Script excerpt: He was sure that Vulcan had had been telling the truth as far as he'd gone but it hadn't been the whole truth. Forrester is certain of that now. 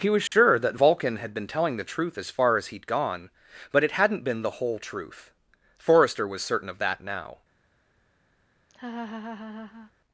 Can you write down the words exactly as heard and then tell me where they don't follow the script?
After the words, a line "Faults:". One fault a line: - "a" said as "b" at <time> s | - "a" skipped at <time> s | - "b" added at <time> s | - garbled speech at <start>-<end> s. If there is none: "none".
He was sure that Vulcan had been telling the truth as far as he'd gone but it hadn't been the whole truth. Forrester was certain of that now.
Faults:
- "had" skipped at 1.3 s
- "is" said as "was" at 6.3 s